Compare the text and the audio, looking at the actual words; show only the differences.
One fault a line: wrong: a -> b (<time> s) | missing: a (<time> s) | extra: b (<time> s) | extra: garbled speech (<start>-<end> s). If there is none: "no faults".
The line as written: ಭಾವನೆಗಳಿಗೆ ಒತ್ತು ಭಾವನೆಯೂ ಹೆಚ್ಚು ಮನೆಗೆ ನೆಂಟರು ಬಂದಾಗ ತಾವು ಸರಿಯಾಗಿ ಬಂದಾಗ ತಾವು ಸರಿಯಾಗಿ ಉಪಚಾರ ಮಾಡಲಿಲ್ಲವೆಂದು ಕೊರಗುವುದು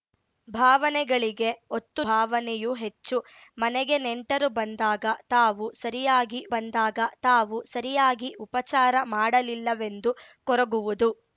no faults